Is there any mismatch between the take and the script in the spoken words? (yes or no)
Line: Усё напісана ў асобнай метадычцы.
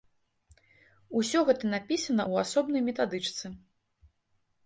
yes